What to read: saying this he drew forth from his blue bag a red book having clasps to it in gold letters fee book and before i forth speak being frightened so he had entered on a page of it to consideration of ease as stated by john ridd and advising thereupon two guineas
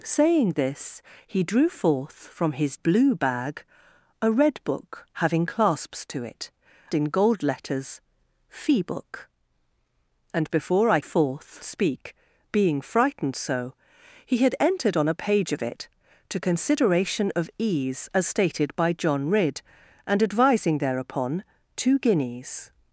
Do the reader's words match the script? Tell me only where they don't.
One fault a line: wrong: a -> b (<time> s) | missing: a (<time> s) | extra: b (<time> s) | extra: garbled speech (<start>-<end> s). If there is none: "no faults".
no faults